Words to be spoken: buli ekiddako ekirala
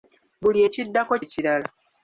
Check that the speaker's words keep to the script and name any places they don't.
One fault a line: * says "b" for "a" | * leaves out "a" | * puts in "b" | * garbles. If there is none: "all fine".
all fine